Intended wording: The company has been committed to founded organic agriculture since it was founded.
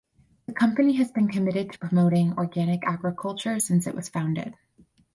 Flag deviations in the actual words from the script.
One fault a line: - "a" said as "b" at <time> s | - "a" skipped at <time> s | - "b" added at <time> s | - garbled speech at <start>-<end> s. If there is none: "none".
- "founded" said as "promoting" at 1.8 s